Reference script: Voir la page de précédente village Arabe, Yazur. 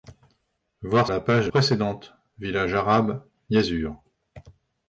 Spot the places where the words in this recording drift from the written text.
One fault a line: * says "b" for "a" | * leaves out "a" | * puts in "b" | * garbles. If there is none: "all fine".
all fine